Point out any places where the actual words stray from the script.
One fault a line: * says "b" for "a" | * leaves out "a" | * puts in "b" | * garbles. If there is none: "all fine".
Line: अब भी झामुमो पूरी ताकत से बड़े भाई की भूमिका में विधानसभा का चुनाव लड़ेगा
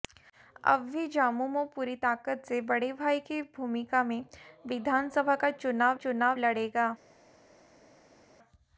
* puts in "चुनाव"